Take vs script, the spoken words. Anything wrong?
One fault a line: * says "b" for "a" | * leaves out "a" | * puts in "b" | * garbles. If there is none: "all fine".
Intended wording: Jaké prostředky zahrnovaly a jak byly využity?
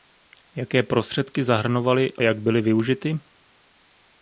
all fine